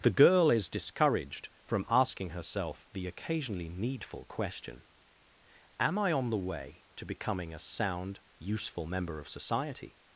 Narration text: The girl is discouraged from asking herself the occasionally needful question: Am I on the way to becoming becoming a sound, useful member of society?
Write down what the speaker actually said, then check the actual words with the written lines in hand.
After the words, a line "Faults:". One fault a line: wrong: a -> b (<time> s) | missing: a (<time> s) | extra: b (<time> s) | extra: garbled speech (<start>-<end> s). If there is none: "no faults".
The girl is discouraged from asking herself the occasionally needful question: Am I on the way to becoming a sound, useful member of society?
Faults:
missing: becoming (7.5 s)